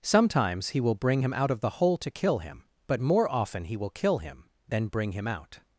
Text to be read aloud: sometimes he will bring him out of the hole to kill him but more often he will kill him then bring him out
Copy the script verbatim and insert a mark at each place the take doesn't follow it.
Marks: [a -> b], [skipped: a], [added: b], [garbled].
sometimes he will bring him out of the hole to kill him but more often he will kill him then bring him out